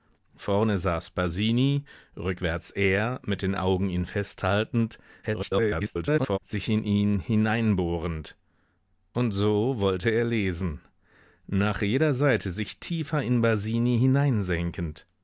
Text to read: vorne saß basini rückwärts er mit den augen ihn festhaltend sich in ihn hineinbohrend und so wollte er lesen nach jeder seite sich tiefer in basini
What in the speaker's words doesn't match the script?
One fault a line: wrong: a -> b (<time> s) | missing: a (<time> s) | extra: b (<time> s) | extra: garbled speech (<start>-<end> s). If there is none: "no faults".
extra: garbled speech (5.2-6.4 s)